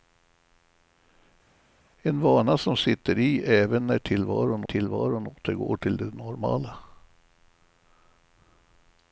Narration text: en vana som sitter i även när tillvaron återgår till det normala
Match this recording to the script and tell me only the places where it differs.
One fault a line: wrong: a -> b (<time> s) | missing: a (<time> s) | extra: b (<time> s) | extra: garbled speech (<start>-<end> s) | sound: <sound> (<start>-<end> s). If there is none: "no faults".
extra: tillvaron (4.6 s)